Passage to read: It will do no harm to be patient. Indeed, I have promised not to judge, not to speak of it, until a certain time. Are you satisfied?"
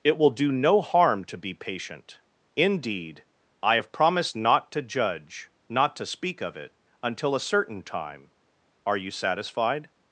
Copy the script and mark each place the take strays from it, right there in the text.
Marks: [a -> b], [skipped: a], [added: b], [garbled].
It will do no harm to be patient. Indeed, I have promised not to judge, not to speak of it, until a certain time. Are you satisfied?"